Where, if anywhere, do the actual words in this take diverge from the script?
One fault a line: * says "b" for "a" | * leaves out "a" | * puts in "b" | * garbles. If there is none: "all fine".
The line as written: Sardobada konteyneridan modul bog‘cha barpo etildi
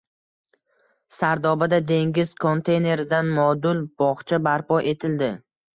* puts in "dengiz"